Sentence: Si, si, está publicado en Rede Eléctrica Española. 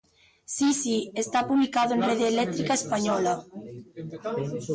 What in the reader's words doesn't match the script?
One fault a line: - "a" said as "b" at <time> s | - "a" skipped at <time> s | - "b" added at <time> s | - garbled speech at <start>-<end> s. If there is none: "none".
none